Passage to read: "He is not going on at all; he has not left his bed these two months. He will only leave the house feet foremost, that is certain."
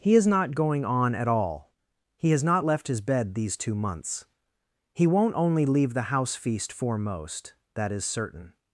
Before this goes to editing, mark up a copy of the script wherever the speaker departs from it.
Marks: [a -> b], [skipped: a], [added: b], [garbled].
"He is not going on at all; he has not left his bed these two months. He [will -> won't] only leave the house [feet -> feast] foremost, that is certain."